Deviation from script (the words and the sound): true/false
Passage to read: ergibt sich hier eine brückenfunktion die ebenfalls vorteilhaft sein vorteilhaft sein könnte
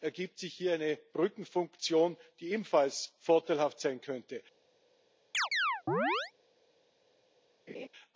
true